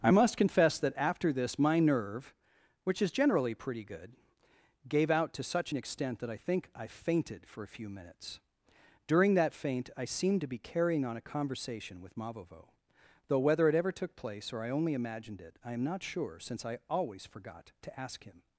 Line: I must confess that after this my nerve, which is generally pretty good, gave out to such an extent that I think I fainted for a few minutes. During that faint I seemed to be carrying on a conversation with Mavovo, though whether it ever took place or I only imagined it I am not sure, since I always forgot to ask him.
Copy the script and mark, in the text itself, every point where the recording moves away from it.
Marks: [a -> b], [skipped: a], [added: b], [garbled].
I must confess that after this my nerve, which is generally pretty good, gave out to such an extent that I think I fainted for a few minutes. During that faint I seemed to be carrying on a conversation with Mavovo, though whether it ever took place or I only imagined it I am not sure, since I always forgot to ask him.